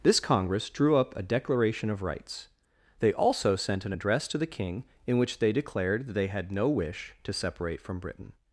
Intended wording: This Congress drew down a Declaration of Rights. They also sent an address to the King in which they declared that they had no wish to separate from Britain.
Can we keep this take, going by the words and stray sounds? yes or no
no